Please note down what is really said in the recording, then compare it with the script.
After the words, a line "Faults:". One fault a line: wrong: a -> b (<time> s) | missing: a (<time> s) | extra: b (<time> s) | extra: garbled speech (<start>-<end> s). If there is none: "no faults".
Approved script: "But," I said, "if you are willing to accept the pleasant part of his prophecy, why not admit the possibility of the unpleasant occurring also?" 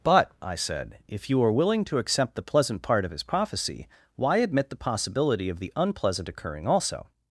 "But," I said, "if you are willing to accept the pleasant part of his prophecy, why admit the possibility of the unpleasant occurring also?"
Faults:
missing: not (4.4 s)